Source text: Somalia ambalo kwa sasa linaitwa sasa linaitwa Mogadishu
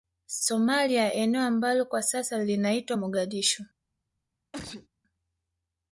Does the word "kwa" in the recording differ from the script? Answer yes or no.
no